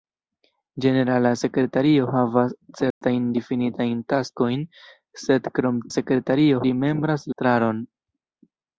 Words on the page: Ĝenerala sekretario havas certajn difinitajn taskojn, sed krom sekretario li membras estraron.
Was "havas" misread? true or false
false